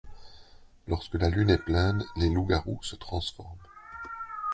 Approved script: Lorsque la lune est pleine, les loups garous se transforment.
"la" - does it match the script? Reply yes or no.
yes